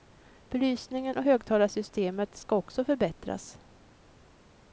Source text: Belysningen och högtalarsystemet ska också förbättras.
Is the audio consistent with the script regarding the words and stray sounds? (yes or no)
yes